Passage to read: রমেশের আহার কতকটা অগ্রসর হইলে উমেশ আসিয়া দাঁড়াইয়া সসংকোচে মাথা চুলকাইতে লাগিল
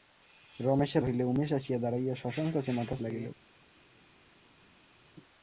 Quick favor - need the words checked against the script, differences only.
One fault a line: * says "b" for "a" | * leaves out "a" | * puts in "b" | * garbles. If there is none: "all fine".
* leaves out "আহার কতকটা অগ্রসর"
* leaves out "চুলকাইতে"